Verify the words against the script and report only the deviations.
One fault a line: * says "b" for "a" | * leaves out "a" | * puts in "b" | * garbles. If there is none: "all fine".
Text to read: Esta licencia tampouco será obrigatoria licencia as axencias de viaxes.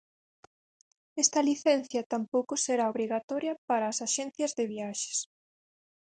* says "para" for "licencia"